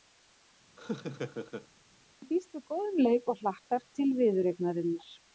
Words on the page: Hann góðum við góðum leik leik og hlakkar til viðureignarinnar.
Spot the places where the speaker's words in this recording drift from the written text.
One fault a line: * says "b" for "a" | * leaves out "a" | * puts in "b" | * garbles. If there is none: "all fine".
* says "býst" for "góðum"
* leaves out "leik"